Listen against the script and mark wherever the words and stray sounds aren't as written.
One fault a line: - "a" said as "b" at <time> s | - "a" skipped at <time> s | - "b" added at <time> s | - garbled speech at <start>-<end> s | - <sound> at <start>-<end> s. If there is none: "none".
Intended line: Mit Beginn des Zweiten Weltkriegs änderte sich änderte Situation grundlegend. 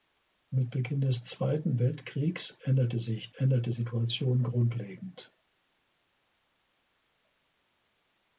none